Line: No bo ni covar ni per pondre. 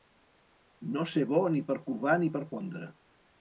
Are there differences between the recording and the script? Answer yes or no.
yes